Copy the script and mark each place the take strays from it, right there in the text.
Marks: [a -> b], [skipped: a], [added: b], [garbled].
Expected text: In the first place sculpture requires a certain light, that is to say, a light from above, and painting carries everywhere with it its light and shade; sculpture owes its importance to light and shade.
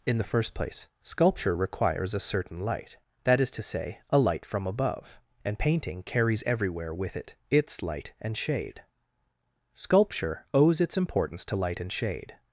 In the first place sculpture requires a certain light, that is to say, a light from above, and painting carries everywhere with it its light and shade; sculpture owes its importance to light and shade.